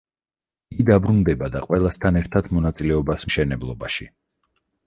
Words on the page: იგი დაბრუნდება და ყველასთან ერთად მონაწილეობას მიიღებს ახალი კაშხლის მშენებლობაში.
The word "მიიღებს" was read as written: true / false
false